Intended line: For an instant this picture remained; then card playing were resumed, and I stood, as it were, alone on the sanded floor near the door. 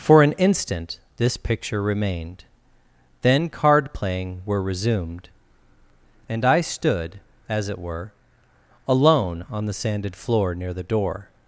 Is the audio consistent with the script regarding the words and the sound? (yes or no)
yes